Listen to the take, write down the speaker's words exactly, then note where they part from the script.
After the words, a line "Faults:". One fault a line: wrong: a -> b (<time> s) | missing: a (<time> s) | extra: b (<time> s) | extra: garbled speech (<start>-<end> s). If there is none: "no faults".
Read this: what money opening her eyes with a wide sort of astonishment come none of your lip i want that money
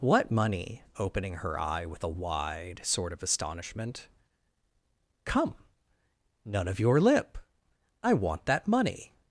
what money opening her eye with a wide sort of astonishment come none of your lip i want that money
Faults:
wrong: eyes -> eye (1.6 s)